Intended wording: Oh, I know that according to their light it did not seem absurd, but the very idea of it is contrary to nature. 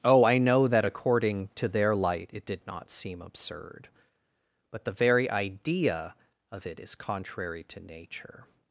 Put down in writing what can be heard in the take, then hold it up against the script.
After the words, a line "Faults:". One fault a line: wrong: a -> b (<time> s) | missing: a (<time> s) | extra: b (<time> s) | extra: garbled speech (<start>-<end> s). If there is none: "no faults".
Oh, I know that according to their light it did not seem absurd, but the very idea of it is contrary to nature.
Faults:
no faults